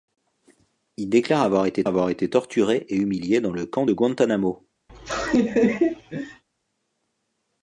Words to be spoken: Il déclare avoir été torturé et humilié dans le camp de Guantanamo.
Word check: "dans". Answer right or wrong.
right